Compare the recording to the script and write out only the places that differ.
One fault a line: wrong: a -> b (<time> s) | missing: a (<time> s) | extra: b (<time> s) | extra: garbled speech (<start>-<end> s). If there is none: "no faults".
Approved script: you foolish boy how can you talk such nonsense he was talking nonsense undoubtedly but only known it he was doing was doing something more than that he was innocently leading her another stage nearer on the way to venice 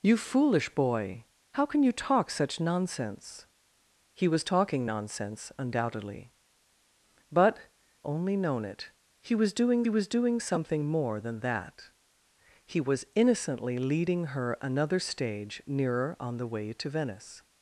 no faults